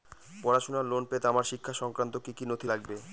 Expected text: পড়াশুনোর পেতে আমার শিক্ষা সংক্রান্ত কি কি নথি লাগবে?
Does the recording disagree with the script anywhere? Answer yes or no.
yes